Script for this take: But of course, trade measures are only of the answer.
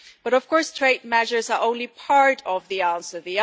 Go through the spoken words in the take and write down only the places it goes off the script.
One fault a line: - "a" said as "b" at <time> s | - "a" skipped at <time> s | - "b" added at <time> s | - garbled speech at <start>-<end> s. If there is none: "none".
- "part" added at 1.9 s